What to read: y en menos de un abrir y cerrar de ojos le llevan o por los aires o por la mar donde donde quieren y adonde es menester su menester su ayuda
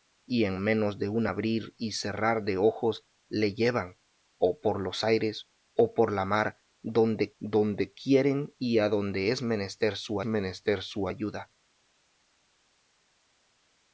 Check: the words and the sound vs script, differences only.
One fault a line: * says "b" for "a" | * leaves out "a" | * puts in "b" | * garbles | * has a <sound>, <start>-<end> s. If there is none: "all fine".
all fine